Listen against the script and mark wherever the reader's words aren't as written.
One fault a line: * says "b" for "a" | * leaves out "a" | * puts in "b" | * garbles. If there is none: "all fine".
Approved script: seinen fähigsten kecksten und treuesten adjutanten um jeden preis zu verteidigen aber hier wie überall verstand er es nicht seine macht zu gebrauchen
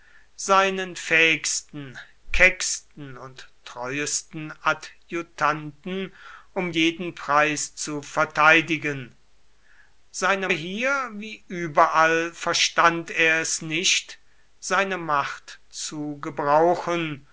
* says "seine" for "aber"